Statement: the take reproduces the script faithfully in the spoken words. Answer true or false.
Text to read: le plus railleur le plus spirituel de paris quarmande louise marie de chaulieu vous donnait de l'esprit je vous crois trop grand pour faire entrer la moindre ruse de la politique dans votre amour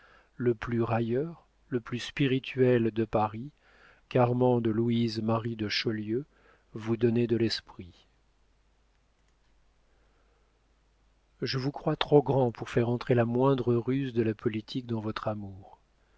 true